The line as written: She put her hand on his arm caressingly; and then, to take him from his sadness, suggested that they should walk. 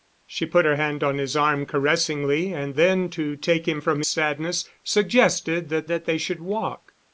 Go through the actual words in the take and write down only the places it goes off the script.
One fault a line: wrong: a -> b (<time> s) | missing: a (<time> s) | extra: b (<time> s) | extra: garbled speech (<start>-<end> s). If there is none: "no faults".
missing: his (4.0 s)
extra: that (5.9 s)